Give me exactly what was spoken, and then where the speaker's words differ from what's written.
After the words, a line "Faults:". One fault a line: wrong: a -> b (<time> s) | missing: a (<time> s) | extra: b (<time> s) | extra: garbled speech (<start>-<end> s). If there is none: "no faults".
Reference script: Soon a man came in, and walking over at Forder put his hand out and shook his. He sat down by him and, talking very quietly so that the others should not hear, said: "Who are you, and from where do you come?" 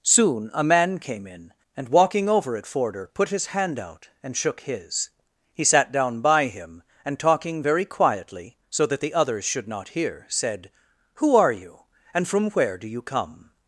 Soon a man came in, and walking over at Forder put his hand out and shook his. He sat down by him and, talking very quietly so that the others should not hear, said: "Who are you, and from where do you come?"
Faults:
no faults